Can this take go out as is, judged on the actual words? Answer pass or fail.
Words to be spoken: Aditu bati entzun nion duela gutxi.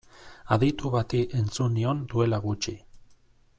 pass